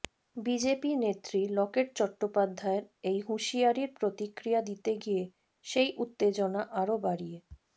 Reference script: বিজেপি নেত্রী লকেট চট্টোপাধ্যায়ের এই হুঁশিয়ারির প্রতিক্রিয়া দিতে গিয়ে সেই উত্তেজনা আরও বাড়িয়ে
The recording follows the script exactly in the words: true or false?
true